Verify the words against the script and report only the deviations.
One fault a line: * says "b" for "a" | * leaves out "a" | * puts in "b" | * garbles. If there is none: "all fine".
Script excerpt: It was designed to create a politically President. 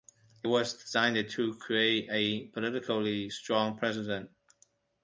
* puts in "strong"